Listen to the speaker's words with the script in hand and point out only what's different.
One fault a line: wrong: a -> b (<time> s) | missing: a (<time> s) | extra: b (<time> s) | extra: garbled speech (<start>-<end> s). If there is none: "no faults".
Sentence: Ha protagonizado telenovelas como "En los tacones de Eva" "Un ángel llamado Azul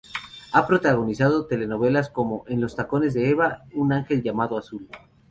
no faults